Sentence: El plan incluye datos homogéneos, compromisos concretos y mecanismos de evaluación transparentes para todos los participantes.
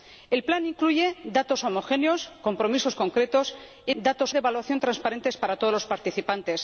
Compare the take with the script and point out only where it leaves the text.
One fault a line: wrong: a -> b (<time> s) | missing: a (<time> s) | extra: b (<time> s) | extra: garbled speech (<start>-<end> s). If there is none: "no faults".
wrong: mecanismos -> datos (4.0 s)